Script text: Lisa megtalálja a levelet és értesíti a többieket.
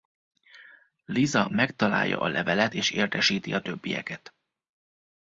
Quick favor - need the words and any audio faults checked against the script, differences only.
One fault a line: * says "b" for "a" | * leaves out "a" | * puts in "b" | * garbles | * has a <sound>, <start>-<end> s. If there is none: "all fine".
all fine